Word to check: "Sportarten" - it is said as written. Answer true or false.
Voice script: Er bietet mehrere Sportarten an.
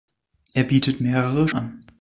false